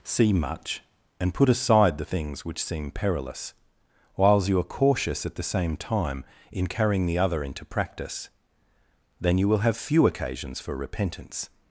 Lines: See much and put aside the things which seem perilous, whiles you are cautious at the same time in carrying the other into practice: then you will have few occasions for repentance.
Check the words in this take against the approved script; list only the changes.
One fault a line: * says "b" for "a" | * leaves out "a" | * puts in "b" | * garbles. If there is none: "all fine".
all fine